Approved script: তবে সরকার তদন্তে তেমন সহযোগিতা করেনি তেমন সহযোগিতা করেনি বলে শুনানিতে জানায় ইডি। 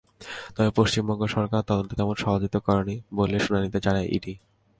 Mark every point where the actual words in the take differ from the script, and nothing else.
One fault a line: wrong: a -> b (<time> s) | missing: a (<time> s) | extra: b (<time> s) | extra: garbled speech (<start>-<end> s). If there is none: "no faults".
extra: পশ্চিমবঙ্গ (0.8 s)
missing: তেমন সহযোগিতা করেনি (3.0 s)